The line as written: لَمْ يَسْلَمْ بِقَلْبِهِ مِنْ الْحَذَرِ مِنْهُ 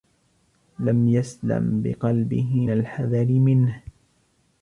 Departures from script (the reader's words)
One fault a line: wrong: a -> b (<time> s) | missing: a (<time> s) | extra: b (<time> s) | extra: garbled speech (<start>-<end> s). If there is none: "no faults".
missing: مِنْ (2.7 s)